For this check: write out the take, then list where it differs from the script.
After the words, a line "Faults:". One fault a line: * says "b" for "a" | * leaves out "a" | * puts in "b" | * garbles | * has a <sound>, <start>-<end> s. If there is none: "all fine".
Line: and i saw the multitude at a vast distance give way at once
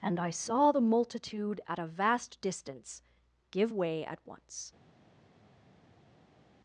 and i saw the multitude at a vast distance give way at once
Faults:
all fine